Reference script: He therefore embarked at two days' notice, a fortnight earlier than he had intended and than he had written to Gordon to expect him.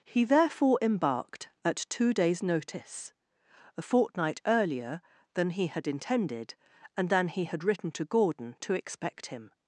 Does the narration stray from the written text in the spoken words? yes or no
no